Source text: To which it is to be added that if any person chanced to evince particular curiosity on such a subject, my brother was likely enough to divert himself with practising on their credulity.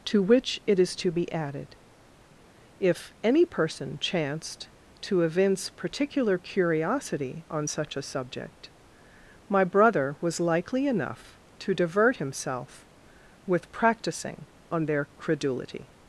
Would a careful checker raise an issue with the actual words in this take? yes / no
yes